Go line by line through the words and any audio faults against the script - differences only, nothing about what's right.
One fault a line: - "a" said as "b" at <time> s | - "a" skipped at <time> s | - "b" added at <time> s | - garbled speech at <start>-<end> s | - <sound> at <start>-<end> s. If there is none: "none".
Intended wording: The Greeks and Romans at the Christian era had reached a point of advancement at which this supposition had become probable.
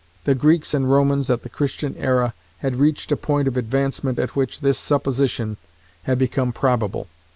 none